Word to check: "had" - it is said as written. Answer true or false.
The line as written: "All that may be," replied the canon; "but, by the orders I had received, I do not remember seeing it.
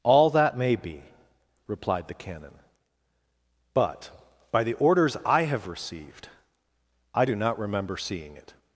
false